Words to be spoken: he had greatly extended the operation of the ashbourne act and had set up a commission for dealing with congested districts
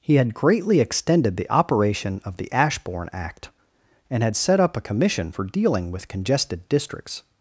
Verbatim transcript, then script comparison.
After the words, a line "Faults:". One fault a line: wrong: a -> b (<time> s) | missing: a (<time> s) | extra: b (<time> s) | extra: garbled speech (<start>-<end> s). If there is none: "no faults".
he had greatly extended the operation of the ashbourne act and had set up a commission for dealing with congested districts
Faults:
no faults